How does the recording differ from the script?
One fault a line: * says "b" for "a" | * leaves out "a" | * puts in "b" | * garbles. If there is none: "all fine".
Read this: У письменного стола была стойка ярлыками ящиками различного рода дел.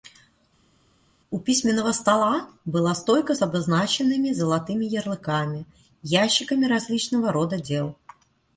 * puts in "с обозначенными золотыми"